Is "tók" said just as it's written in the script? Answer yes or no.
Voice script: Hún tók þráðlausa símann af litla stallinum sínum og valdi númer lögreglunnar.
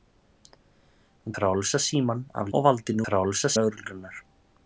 no